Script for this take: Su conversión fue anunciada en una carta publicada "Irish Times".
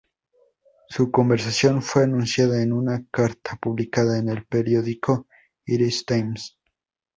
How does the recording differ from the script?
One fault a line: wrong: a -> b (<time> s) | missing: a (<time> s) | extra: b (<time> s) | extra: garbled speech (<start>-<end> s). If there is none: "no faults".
extra: en el periódico (4.2 s)